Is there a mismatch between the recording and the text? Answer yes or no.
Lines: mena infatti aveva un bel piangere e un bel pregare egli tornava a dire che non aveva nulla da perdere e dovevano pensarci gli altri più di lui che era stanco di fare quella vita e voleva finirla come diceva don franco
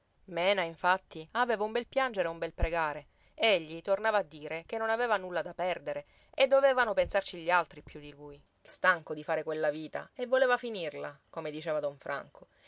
yes